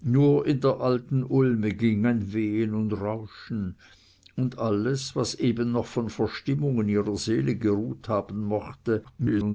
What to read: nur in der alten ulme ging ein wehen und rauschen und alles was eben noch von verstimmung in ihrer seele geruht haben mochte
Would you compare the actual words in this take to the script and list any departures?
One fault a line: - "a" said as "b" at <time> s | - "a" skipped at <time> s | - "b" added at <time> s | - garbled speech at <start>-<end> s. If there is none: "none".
- garbled speech at 9.0-9.5 s